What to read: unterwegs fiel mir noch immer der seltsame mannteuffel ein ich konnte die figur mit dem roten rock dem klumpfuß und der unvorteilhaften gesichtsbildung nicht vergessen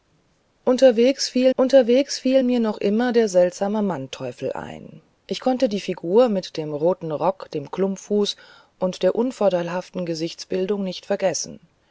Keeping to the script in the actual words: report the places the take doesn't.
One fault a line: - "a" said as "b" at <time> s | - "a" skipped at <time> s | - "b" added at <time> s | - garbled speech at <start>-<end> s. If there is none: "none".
- "unterwegs fiel" added at 1.6 s